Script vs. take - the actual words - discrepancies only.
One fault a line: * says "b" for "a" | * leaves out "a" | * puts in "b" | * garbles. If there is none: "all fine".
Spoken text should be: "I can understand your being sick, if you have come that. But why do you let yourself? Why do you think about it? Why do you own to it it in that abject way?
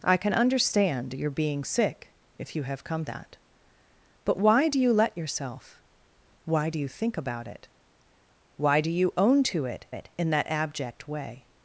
all fine